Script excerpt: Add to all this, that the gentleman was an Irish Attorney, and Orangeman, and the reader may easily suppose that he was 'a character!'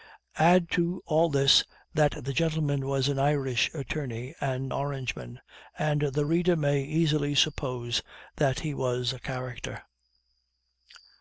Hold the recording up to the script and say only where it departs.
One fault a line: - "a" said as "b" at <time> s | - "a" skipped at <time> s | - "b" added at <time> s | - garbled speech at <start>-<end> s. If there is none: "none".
none